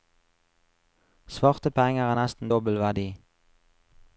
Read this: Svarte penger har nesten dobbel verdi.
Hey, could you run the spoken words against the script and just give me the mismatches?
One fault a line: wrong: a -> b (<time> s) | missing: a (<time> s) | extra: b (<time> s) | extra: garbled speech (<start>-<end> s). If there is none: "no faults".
no faults